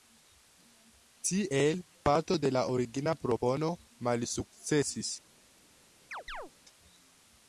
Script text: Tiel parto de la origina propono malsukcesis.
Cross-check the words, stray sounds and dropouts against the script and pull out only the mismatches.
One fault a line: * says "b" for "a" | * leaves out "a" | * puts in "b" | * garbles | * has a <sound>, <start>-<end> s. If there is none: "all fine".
* has a chirp, 6.1-6.5 s